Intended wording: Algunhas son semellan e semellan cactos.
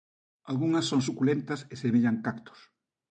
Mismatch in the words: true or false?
true